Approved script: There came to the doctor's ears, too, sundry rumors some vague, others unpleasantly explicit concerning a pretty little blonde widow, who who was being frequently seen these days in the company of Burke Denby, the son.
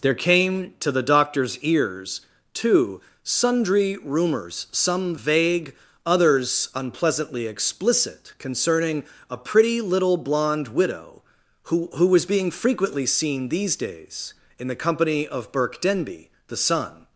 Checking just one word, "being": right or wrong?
right